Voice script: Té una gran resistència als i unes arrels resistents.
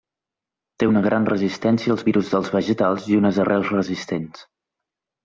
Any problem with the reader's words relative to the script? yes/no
yes